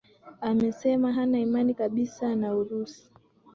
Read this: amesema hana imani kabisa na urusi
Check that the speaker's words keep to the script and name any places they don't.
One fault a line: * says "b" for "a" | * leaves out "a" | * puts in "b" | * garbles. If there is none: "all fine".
all fine